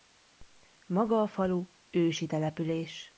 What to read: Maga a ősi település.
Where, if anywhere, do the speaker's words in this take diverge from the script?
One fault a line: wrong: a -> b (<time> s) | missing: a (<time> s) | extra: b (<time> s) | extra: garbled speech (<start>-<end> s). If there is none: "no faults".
extra: falu (1.3 s)